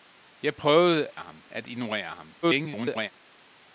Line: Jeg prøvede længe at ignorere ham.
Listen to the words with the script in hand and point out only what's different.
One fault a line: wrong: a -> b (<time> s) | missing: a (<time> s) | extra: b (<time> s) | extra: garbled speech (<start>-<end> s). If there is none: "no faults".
wrong: længe -> ham (1.2 s)
extra: garbled speech (2.4-3.1 s)